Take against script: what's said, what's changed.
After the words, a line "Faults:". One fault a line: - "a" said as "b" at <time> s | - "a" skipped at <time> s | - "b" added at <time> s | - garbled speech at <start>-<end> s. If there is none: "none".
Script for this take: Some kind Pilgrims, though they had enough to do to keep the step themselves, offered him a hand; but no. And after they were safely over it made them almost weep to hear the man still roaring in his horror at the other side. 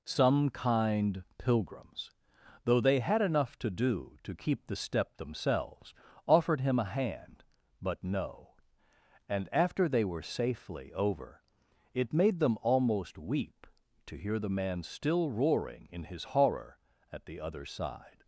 Some kind Pilgrims, though they had enough to do to keep the step themselves, offered him a hand; but no. And after they were safely over it made them almost weep to hear the man still roaring in his horror at the other side.
Faults:
none